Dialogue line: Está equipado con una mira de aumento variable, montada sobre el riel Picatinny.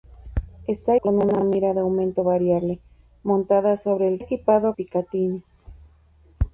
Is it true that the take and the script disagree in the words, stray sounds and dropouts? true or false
true